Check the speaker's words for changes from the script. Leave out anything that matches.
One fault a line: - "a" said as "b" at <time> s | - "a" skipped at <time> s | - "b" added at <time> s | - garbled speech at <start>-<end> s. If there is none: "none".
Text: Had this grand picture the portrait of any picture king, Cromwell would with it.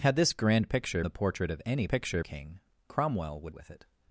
none